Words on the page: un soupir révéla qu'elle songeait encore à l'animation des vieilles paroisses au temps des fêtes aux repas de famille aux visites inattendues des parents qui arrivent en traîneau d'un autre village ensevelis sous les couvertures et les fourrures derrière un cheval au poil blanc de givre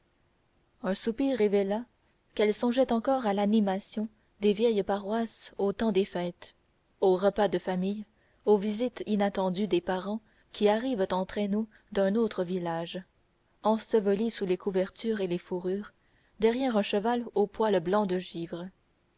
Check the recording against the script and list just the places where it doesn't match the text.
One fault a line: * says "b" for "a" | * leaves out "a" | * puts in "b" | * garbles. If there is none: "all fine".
all fine